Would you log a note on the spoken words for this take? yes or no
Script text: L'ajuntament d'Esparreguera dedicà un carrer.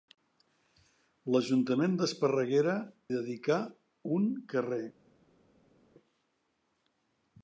no